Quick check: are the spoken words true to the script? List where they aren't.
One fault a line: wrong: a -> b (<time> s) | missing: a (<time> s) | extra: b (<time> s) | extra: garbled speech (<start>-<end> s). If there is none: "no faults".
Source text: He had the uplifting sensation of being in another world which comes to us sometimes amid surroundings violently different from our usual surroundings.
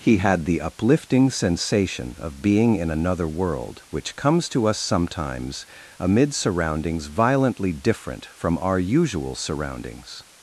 no faults